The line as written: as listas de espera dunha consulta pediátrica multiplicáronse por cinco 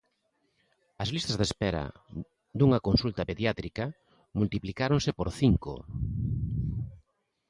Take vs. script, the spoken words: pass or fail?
pass